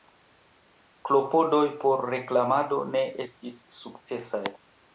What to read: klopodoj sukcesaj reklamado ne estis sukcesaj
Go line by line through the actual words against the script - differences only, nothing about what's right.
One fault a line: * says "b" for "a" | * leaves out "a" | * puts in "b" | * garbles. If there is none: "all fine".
* says "por" for "sukcesaj"